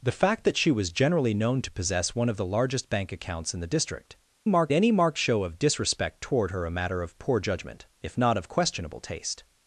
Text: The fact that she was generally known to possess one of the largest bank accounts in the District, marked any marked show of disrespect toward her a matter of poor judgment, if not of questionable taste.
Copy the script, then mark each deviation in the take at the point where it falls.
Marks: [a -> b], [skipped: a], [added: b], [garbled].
The fact that she was generally known to possess one of the largest bank accounts in the District, marked any marked show of disrespect toward her a matter of poor judgment, if not of questionable taste.